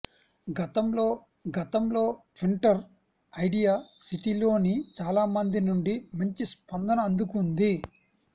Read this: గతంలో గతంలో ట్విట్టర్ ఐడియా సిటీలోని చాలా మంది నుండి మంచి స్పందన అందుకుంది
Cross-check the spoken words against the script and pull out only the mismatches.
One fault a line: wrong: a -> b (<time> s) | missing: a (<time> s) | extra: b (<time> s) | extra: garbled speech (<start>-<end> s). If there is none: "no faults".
no faults